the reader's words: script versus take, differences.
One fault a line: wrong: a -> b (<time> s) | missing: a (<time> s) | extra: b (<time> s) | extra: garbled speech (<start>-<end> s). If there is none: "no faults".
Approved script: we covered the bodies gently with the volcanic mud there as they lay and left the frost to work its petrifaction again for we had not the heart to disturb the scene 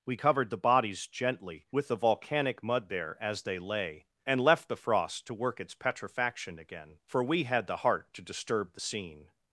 missing: not (7.7 s)